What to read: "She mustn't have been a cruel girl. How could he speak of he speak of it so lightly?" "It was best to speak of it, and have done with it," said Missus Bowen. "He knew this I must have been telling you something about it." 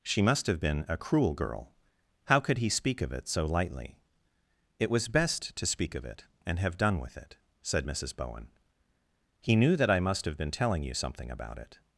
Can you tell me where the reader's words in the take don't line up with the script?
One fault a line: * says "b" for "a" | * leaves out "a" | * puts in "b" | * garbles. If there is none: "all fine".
* says "must" for "mustn't"
* leaves out "he speak of"
* says "that" for "this"